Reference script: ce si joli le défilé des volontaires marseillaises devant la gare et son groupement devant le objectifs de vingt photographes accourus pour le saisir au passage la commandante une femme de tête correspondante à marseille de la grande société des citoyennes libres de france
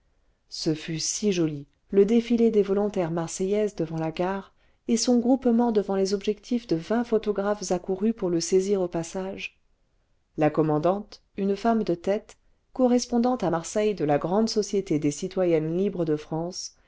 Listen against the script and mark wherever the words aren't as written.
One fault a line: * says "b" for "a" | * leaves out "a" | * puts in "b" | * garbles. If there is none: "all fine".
* puts in "fut"
* says "les" for "le"